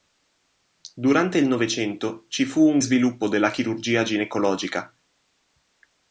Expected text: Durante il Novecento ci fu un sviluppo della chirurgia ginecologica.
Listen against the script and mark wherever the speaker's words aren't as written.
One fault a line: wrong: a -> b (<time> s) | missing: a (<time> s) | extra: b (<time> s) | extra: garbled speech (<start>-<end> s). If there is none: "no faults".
no faults